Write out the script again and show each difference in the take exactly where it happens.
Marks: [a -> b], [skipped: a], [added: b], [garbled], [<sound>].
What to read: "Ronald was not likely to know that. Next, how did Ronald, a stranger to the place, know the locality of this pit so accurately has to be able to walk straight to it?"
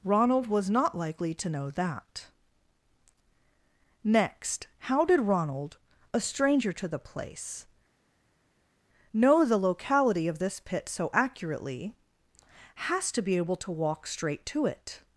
"Ronald was not likely to know that. Next, how did Ronald, a stranger to the place, know the locality of this pit so accurately has to be able to walk straight to it?"